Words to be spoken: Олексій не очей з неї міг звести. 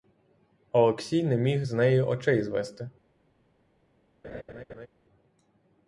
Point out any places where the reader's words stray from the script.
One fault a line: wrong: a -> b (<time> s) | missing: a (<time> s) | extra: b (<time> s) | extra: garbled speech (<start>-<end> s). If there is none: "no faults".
wrong: очей -> міг (1.4 s)
wrong: міг -> очей (2.0 s)